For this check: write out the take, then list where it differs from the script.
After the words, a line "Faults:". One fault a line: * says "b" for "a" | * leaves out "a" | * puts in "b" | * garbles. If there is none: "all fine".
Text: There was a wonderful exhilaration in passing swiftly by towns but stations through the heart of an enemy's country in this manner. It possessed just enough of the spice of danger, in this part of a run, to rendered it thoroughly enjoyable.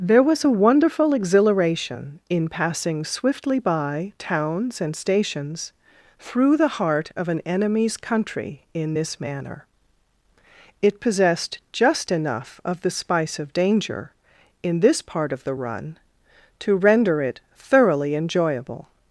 There was a wonderful exhilaration in passing swiftly by towns and stations through the heart of an enemy's country in this manner. It possessed just enough of the spice of danger, in this part of the run, to render it thoroughly enjoyable.
Faults:
* says "and" for "but"
* says "the" for "a"
* says "render" for "rendered"